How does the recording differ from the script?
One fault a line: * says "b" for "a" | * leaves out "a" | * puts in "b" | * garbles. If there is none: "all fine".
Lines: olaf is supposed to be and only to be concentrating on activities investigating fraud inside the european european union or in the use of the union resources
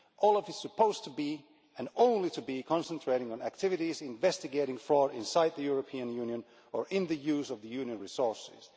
* leaves out "european"